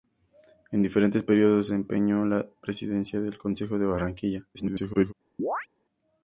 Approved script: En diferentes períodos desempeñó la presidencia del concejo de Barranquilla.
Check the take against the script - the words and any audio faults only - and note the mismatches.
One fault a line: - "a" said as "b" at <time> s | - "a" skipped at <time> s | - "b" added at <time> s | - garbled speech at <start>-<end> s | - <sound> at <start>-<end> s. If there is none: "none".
- garbled speech at 4.5-5.1 s
- chirp at 5.4-5.7 s